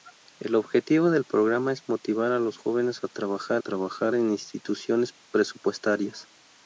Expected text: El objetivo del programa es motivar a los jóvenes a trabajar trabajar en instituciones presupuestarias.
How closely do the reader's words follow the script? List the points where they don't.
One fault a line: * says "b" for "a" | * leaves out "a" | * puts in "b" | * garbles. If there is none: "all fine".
all fine